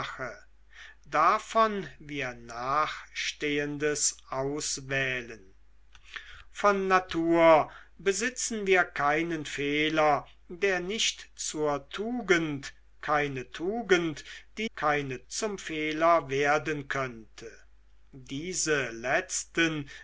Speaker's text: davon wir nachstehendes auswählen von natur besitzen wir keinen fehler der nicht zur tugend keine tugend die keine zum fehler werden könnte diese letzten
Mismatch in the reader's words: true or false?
false